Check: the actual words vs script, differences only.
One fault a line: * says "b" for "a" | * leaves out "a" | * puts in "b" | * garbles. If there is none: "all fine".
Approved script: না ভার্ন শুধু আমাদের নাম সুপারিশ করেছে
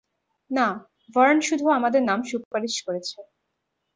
all fine